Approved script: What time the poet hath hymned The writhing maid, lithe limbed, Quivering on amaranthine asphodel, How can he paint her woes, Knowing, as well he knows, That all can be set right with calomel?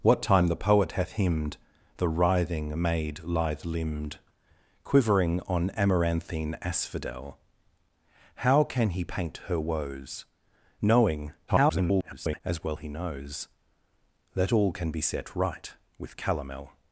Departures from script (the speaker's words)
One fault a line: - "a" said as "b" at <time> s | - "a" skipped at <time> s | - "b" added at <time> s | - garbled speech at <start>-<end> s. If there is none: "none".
- garbled speech at 11.5-12.4 s